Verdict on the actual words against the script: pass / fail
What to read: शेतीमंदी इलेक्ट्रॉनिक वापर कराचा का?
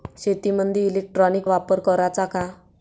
pass